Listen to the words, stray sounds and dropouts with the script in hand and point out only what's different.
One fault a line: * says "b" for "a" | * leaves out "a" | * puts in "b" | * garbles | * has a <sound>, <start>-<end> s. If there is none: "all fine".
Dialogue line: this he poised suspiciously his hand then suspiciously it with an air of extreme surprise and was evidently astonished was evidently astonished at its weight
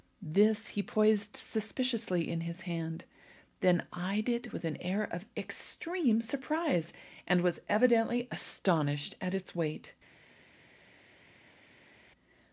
* puts in "in"
* says "eyed" for "suspiciously"
* leaves out "was evidently astonished"